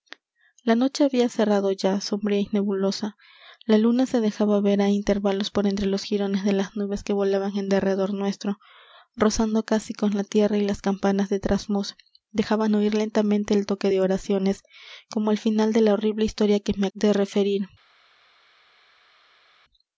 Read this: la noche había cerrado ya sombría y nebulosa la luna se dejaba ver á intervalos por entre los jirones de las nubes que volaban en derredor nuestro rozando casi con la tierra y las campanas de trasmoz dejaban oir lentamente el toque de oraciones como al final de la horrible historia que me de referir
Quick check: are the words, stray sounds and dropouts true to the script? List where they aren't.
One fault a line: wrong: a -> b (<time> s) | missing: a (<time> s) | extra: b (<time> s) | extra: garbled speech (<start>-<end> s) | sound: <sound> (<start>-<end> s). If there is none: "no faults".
no faults